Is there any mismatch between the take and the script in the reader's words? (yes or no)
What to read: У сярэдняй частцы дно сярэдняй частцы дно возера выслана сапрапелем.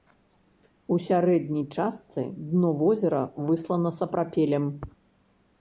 yes